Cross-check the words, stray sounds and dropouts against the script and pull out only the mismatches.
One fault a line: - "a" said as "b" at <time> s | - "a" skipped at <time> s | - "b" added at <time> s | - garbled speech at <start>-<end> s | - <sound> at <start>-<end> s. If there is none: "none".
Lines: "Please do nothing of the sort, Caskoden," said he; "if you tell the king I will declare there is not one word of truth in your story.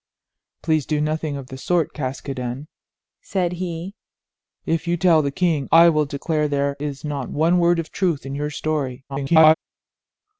- garbled speech at 9.1-9.5 s